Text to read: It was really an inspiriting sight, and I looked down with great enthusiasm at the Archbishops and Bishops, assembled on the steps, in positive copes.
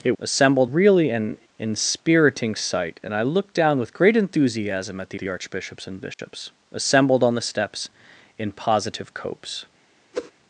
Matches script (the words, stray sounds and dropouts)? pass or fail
fail